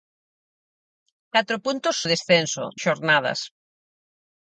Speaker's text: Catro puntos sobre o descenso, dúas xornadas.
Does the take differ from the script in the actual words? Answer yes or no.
yes